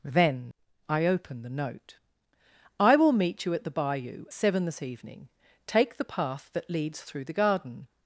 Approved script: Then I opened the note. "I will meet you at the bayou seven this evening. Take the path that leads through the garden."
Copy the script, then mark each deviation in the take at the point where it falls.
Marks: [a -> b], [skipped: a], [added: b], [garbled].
Then I opened the note. "I will meet you at the bayou seven this evening. Take the path that leads through the garden."